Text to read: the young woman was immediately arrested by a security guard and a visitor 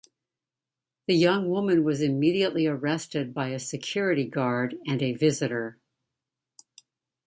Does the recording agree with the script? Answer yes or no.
yes